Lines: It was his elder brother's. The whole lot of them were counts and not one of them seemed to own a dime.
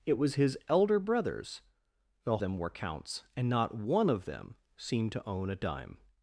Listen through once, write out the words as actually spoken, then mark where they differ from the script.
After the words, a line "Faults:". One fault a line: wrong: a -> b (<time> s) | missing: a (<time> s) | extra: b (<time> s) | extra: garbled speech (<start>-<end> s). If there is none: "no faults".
It was his elder brother's. The them were counts and not one of them seemed to own a dime.
Faults:
missing: whole lot of (2.4 s)